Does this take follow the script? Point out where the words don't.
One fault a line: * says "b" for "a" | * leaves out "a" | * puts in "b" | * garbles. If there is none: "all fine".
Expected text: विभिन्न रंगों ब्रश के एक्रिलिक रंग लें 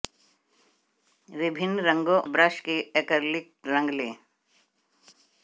all fine